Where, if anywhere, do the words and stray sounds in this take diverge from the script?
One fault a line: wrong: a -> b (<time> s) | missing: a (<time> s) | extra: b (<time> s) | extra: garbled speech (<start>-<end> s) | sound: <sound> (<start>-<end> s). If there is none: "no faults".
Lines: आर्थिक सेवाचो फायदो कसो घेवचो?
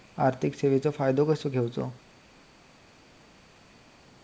no faults